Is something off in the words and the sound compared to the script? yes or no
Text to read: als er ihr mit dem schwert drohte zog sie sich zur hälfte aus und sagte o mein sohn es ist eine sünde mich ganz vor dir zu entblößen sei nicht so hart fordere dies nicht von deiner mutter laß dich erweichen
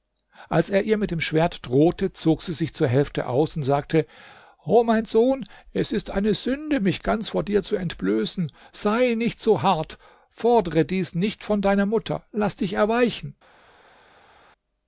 no